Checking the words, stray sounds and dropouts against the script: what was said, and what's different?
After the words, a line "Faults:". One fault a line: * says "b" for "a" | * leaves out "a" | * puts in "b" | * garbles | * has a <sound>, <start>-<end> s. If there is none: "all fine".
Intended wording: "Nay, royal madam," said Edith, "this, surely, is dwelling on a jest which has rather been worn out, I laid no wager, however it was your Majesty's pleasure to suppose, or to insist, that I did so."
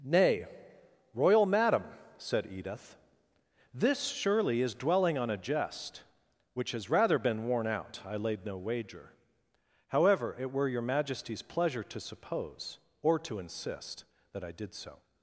"Nay, royal madam," said Edith, "this, surely, is dwelling on a jest which has rather been worn out, I laid no wager, however it were your Majesty's pleasure to suppose, or to insist, that I did so."
Faults:
* says "were" for "was"